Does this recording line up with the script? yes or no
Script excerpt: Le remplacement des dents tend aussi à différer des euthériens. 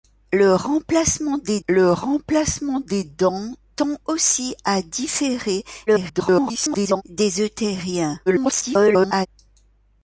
no